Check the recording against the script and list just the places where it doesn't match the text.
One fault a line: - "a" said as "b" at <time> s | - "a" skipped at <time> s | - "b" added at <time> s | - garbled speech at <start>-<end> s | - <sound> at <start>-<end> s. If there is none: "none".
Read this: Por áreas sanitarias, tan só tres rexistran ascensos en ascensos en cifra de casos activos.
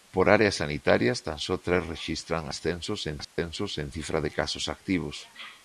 - dropout at 3.2-3.4 s